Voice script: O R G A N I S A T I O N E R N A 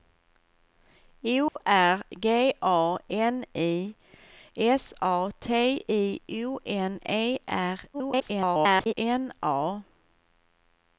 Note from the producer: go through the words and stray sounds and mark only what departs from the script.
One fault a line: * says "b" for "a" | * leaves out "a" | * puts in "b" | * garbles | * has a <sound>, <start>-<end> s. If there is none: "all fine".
* has a dropout, 1.5-1.6 s
* garbles